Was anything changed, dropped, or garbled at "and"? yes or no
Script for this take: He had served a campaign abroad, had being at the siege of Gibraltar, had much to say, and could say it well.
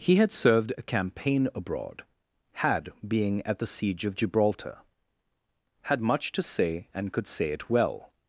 no